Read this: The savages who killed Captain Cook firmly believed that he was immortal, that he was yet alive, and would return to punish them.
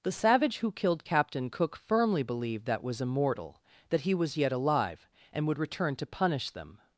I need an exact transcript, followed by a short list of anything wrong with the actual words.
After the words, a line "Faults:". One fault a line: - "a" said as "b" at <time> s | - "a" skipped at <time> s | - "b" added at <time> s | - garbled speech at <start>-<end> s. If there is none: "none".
The savage who killed Captain Cook firmly believed that was immortal, that he was yet alive, and would return to punish them.
Faults:
- "savages" said as "savage" at 0.1 s
- "he" skipped at 2.8 s